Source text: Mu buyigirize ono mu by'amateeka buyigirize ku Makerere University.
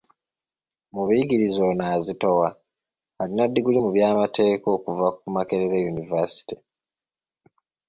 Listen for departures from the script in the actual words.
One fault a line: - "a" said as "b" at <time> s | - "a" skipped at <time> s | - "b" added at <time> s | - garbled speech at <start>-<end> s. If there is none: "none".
- "azitowa alina ddiguli" added at 1.9 s
- "buyigirize" said as "okuva" at 4.8 s